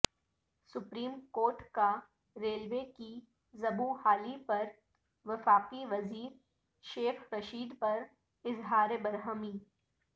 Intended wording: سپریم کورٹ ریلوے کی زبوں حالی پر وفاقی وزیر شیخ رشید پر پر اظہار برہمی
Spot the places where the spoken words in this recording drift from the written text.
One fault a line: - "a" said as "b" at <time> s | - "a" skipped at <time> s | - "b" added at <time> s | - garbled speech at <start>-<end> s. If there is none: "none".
- "کا" added at 1.7 s
- "پر" skipped at 8.0 s